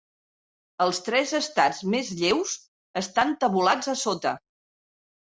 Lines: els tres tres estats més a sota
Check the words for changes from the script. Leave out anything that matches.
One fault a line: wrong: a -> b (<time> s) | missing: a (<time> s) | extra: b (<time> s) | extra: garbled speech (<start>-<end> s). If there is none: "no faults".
missing: tres (1.3 s)
extra: lleus estan tabulats (2.2 s)